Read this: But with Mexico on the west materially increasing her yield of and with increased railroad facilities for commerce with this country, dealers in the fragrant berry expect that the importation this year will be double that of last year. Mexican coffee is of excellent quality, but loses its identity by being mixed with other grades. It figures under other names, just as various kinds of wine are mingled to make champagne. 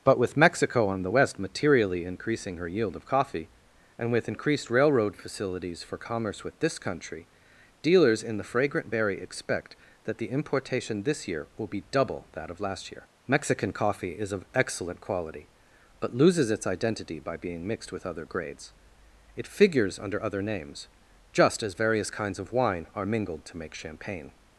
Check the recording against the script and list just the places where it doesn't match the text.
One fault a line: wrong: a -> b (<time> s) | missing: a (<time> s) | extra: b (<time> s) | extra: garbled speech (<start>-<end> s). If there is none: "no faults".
extra: coffee (3.0 s)